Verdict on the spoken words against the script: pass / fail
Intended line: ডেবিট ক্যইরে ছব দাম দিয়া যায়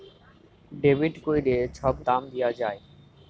pass